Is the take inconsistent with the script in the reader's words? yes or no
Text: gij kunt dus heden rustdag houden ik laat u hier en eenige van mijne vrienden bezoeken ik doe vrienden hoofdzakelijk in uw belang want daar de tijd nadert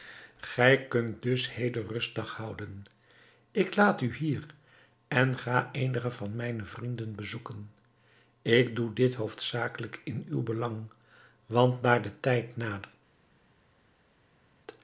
yes